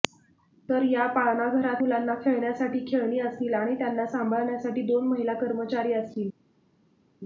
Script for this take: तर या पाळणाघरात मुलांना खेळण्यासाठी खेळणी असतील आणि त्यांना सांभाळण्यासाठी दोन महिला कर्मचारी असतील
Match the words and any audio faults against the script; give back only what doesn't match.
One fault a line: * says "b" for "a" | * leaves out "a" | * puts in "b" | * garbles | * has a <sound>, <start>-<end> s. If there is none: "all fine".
all fine